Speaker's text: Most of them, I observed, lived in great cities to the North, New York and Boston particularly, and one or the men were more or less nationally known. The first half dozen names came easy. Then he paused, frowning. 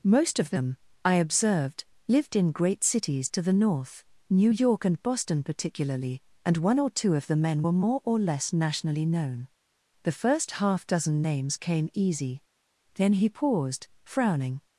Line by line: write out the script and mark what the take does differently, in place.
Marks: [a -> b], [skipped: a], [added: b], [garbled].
Most of them, I observed, lived in great cities to the North, New York and Boston particularly, and one or [added: two of] the men were more or less nationally known. The first half dozen names came easy. Then he paused, frowning.